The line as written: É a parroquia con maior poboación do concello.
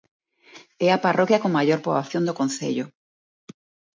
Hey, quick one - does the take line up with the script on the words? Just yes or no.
yes